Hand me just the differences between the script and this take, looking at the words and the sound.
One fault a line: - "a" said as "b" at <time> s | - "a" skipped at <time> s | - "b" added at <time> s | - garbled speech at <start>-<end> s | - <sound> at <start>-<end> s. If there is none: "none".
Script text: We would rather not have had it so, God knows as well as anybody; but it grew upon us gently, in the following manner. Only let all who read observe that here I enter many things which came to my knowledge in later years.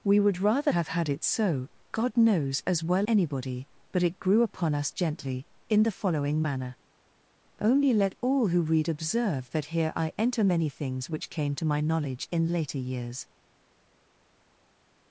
- "not" skipped at 0.7 s
- "as" skipped at 3.1 s